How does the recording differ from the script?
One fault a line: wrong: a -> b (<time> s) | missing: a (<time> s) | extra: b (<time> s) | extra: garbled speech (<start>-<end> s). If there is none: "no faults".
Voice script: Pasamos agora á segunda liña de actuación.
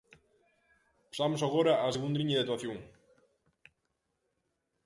no faults